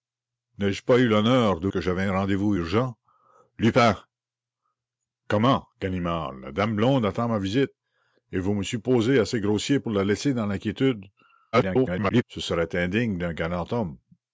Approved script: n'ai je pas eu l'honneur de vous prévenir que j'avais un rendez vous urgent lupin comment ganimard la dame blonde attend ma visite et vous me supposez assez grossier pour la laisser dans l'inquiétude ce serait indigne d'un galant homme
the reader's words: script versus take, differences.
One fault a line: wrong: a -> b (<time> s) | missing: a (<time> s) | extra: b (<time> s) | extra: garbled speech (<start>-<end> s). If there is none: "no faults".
missing: vous prévenir (1.7 s)
extra: garbled speech (11.5-12.2 s)